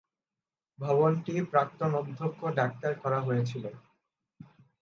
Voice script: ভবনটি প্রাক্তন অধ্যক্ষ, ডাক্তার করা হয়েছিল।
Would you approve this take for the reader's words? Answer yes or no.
yes